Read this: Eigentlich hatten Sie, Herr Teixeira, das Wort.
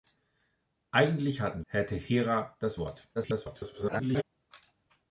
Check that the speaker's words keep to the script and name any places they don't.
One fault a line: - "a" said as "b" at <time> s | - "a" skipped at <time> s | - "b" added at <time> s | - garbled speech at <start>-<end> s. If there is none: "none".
- "Sie" skipped at 1.6 s
- garbled speech at 3.1-4.2 s